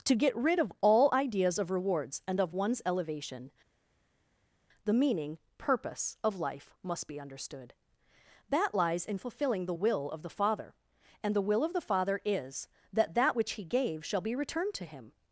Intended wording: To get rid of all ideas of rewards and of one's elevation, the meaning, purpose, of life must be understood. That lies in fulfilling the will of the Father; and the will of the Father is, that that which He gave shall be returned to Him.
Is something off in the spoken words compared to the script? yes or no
no